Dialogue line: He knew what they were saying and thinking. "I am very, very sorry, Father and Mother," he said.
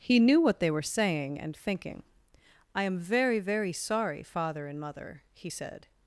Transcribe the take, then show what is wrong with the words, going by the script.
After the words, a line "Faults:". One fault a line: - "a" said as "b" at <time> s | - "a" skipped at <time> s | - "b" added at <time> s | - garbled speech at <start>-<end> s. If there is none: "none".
He knew what they were saying and thinking. "I am very, very sorry, Father and Mother," he said.
Faults:
none